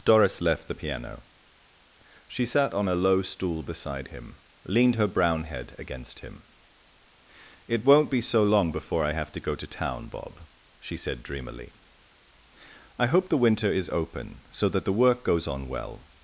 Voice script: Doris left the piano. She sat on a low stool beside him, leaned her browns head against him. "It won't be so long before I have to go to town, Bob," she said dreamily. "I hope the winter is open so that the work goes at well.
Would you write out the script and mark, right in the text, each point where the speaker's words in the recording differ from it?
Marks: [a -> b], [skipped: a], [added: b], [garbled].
Doris left the piano. She sat on a low stool beside him, leaned her [browns -> brown] head against him. "It won't be so long before I have to go to town, Bob," she said dreamily. "I hope the winter is open so that the work goes [at -> on] well.